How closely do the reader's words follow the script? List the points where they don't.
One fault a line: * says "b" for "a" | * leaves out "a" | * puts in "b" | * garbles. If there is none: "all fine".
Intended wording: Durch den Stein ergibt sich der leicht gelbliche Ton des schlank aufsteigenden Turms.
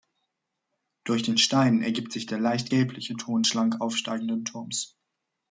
* leaves out "des"